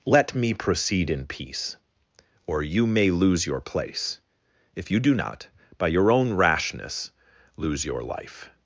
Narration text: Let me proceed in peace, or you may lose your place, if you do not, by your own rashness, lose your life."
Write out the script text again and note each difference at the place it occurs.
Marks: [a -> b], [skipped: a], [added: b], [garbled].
Let me proceed in peace, or you may lose your place, if you do not, by your own rashness, lose your life."